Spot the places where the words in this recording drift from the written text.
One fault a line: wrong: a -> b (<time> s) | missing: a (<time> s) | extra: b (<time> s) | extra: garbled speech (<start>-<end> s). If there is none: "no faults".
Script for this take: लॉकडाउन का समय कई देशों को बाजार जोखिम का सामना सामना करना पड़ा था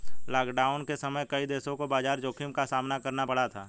wrong: का -> के (0.8 s)
missing: सामना (3.0 s)